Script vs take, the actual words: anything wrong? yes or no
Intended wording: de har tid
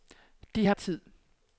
no